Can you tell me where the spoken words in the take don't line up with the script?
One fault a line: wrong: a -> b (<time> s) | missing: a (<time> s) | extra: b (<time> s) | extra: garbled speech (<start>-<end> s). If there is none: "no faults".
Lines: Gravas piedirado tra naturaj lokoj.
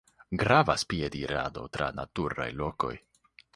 no faults